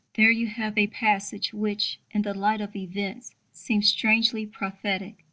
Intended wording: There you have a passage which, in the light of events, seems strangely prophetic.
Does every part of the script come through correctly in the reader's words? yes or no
yes